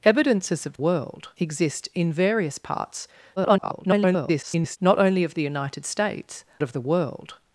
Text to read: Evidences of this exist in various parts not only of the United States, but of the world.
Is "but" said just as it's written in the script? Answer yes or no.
no